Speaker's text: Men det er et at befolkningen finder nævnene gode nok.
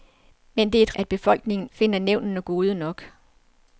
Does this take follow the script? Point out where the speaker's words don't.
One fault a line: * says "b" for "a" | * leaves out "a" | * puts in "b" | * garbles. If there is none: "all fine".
all fine